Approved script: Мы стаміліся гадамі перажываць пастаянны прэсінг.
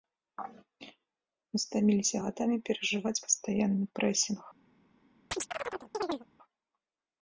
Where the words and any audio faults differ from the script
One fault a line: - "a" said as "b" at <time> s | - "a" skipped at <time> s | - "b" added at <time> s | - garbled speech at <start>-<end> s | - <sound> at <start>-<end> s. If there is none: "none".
- chirp at 5.3-6.3 s